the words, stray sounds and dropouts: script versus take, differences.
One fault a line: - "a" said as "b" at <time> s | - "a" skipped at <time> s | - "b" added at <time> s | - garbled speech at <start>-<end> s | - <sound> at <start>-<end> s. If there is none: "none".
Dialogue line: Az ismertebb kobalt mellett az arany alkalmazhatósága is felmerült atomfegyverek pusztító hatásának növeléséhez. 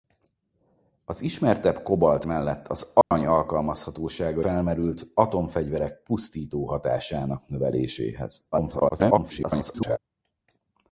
- dropout at 3.0-3.1 s
- "is" skipped at 4.4 s
- garbled speech at 8.5-10.0 s